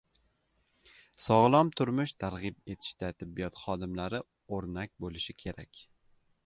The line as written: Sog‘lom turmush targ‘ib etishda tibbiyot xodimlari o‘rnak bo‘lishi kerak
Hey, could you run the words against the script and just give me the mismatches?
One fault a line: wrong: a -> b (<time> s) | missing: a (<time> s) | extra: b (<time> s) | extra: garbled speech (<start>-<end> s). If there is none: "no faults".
no faults